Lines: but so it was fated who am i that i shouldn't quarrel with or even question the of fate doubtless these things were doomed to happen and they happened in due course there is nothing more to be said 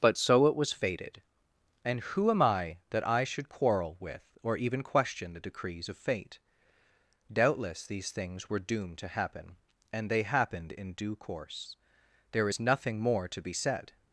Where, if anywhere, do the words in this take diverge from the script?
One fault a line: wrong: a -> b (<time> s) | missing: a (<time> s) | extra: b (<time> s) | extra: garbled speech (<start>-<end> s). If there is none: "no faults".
extra: and (1.9 s)
wrong: shouldn't -> should (3.2 s)
extra: decrees (5.5 s)